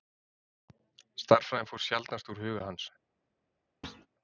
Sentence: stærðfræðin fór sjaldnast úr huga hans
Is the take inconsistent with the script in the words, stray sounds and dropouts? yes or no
yes